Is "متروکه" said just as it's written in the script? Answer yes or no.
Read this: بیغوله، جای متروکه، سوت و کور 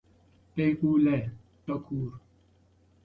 no